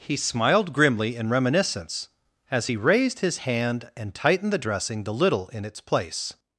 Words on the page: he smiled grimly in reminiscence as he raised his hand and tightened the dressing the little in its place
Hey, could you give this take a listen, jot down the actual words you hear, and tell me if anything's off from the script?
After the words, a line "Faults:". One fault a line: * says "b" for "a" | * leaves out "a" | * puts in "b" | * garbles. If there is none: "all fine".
he smiled grimly in reminiscence as he raised his hand and tightened the dressing the little in its place
Faults:
all fine